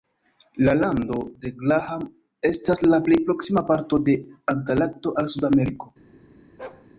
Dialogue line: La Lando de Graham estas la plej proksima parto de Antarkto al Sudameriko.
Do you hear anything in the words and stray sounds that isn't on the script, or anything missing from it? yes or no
yes